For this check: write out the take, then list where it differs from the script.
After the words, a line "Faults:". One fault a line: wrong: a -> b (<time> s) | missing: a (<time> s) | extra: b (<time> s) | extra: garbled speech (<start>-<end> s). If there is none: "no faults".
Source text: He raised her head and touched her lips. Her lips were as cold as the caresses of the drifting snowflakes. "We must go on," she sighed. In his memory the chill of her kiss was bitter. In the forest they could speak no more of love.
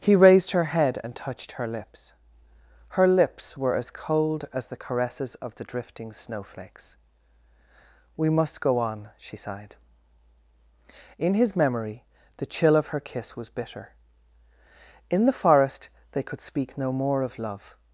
He raised her head and touched her lips. Her lips were as cold as the caresses of the drifting snowflakes. "We must go on," she sighed. In his memory the chill of her kiss was bitter. In the forest they could speak no more of love.
Faults:
no faults